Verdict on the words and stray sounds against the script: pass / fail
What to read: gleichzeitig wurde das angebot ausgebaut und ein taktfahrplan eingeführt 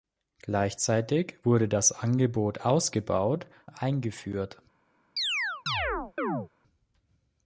fail